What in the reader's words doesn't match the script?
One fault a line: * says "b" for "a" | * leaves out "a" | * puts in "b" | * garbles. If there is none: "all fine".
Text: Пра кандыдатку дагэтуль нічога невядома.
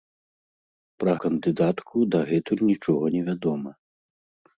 all fine